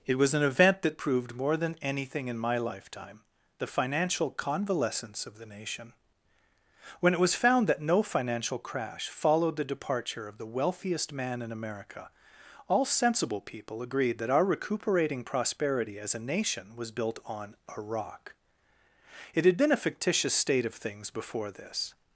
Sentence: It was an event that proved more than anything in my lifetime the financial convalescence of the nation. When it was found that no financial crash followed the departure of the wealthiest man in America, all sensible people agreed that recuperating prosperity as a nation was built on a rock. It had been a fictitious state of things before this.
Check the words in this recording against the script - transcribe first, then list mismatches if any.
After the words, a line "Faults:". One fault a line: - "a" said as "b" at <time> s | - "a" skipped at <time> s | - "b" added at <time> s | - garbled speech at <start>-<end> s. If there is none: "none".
It was an event that proved more than anything in my lifetime the financial convalescence of the nation. When it was found that no financial crash followed the departure of the wealthiest man in America, all sensible people agreed that our recuperating prosperity as a nation was built on a rock. It had been a fictitious state of things before this.
Faults:
- "our" added at 14.3 s